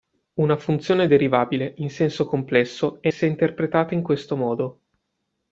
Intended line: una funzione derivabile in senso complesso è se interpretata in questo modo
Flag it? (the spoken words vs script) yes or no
no